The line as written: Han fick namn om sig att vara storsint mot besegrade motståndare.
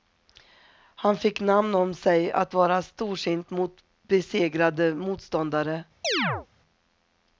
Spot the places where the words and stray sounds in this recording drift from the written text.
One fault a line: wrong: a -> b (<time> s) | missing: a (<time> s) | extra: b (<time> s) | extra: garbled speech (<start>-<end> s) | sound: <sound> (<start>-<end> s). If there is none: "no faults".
sound: chirp (6.0-6.5 s)